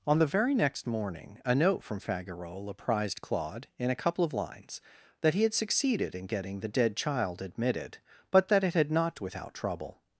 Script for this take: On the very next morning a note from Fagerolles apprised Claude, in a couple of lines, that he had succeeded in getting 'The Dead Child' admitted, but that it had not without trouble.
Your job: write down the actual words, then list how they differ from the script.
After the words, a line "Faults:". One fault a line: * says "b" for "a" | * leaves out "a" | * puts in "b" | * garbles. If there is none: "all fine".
On the very next morning a note from Fagerolles apprised Claude, in a couple of lines, that he had succeeded in getting 'The Dead Child' admitted, but that it had not without trouble.
Faults:
all fine